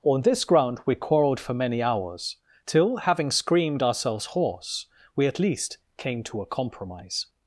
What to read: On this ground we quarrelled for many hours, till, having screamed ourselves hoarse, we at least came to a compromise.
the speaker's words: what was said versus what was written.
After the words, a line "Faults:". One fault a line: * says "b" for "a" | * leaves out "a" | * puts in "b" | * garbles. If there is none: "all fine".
On this ground we quarrelled for many hours, till, having screamed ourselves hoarse, we at least came to a compromise.
Faults:
all fine